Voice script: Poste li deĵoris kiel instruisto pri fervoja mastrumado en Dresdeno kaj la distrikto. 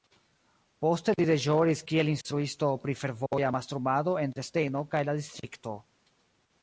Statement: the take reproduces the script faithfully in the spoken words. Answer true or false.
true